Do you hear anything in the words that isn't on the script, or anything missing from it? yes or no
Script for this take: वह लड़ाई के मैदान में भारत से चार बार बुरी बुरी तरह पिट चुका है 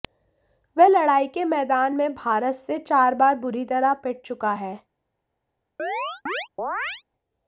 yes